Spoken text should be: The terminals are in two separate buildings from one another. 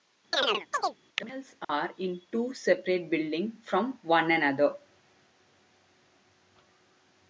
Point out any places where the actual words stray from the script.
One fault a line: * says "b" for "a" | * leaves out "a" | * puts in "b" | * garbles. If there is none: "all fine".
all fine